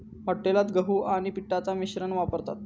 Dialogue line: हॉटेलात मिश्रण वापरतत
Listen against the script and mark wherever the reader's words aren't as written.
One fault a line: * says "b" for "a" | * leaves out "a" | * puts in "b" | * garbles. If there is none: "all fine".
* puts in "गहू आणि पिठाचा"